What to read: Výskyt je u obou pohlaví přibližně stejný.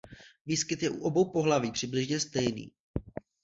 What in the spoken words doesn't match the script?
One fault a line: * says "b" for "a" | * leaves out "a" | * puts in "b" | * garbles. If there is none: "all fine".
all fine